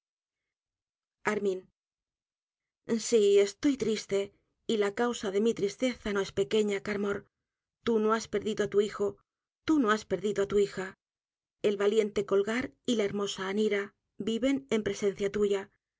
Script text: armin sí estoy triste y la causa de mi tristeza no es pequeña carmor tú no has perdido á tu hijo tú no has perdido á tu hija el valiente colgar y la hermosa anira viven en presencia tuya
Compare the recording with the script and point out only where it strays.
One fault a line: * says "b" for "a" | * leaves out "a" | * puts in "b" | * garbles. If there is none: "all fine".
all fine